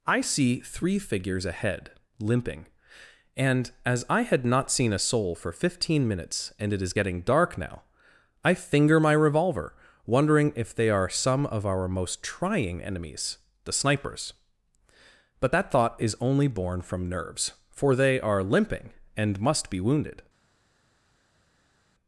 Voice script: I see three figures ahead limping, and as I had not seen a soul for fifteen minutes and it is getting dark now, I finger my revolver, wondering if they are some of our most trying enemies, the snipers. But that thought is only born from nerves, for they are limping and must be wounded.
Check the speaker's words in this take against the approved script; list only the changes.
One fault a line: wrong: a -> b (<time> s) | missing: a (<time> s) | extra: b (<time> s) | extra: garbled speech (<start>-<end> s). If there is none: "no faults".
no faults